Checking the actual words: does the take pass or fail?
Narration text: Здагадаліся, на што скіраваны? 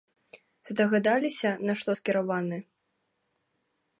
pass